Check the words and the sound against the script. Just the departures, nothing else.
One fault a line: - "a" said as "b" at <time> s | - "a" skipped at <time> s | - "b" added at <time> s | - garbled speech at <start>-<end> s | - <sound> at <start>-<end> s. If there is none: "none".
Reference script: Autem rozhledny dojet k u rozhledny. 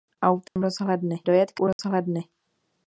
- dropout at 0.5-0.6 s
- dropout at 1.7-1.8 s